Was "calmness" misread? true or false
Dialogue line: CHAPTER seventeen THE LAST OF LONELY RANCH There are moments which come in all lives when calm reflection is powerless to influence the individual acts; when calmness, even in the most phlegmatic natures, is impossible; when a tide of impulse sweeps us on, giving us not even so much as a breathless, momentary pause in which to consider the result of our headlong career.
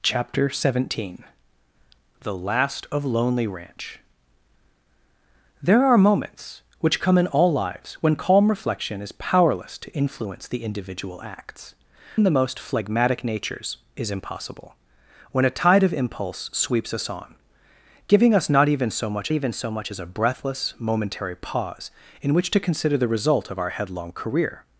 true